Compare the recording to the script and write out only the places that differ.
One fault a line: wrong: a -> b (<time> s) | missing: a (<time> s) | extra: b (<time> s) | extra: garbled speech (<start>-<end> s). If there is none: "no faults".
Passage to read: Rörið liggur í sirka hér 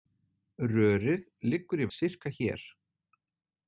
no faults